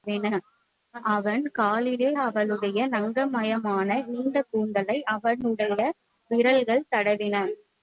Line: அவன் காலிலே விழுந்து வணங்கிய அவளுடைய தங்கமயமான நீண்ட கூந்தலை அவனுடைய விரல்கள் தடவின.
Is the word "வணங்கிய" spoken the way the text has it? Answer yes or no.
no